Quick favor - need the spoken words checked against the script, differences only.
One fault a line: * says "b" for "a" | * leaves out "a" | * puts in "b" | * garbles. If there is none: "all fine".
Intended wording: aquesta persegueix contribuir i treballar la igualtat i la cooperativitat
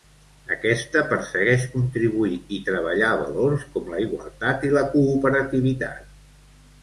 * puts in "valors com"